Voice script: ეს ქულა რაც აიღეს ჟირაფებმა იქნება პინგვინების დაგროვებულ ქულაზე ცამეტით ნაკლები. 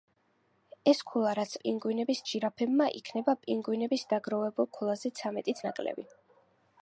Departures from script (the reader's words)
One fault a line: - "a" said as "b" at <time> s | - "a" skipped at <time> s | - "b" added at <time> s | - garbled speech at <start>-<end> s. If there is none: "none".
- "აიღეს" said as "პინგვინების" at 1.6 s